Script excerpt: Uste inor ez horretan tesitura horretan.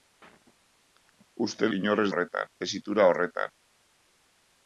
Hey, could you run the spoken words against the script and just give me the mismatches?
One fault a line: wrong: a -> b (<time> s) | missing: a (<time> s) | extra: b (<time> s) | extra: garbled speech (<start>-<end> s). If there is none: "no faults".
no faults